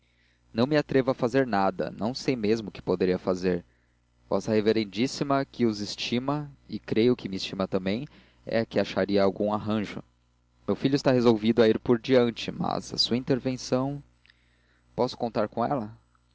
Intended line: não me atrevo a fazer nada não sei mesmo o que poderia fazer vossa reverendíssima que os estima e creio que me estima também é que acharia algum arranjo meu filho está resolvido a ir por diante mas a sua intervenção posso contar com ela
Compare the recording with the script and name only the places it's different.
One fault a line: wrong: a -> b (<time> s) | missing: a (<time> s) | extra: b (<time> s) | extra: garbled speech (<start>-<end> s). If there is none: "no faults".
no faults